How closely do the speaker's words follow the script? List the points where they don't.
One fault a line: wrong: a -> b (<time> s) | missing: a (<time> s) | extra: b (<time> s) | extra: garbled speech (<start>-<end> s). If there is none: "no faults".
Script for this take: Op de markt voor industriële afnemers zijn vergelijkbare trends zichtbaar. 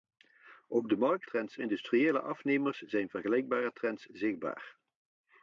wrong: voor -> trends (1.2 s)